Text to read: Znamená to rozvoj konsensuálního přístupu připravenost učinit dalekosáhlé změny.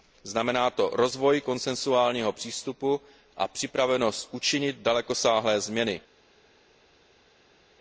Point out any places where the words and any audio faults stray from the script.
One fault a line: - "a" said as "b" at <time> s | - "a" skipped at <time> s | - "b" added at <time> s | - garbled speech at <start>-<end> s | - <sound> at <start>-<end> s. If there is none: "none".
- "a" added at 3.4 s